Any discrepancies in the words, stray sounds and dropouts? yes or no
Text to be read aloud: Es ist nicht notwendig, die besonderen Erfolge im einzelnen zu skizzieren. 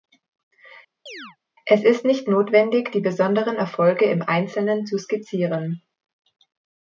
yes